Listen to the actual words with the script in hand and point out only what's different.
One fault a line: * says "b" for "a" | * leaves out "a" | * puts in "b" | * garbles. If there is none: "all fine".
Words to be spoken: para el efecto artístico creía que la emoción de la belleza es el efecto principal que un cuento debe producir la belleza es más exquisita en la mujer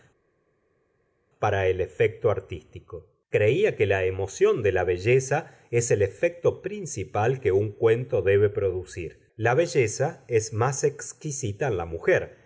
all fine